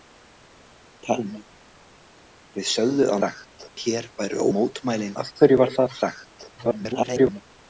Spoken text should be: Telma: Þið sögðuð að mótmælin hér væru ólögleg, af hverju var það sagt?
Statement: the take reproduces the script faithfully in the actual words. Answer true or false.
false